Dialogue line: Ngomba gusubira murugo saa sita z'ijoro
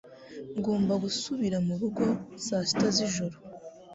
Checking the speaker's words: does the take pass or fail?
pass